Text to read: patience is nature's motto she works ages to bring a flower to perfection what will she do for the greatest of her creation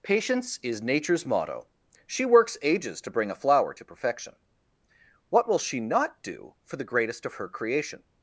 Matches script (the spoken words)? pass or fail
fail